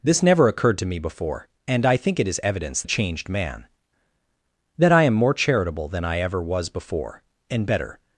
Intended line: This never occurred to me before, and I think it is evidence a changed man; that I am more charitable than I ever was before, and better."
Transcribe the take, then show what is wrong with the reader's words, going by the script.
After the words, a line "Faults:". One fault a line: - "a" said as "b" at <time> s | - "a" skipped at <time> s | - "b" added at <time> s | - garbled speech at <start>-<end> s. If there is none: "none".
This never occurred to me before, and I think it is evidence a changed man; that I am more charitable than I ever was before, and better."
Faults:
none